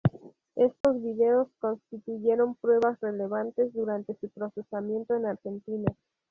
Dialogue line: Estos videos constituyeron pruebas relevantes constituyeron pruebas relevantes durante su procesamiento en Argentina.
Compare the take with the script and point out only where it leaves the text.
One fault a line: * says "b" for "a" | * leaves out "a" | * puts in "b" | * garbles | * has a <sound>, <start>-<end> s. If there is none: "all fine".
* has a dropout, 0.8-0.8 s
* leaves out "constituyeron pruebas relevantes"